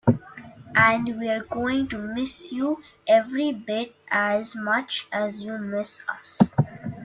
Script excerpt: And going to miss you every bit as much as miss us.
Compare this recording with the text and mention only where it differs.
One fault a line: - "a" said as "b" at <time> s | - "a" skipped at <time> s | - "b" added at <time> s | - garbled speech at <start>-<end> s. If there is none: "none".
- "we're" added at 1.2 s
- "you" added at 5.4 s